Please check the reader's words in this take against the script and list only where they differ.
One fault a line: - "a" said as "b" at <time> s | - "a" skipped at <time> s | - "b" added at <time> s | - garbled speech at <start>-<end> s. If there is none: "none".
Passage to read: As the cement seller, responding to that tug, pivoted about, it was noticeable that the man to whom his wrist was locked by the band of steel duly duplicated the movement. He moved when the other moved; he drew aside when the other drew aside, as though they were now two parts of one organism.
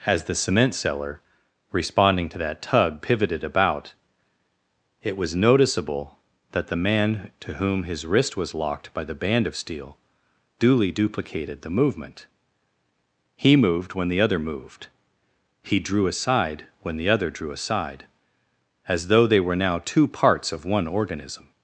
none